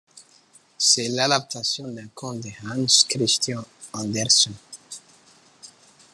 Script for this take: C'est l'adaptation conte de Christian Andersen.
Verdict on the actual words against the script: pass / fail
fail